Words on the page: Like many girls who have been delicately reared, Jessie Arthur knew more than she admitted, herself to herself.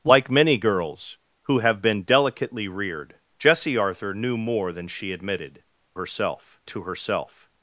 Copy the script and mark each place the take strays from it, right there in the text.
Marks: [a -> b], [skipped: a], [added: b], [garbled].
Like many girls who have been delicately reared, Jessie Arthur knew more than she admitted, herself to herself.